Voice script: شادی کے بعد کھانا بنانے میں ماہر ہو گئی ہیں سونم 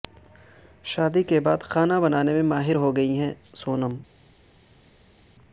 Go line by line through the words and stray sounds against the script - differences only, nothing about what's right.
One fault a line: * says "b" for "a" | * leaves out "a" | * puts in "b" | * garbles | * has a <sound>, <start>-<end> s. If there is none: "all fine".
all fine